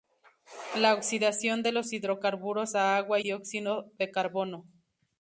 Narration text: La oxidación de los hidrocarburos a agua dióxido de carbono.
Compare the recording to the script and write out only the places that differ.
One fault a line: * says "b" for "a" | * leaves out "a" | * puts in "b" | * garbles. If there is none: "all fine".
all fine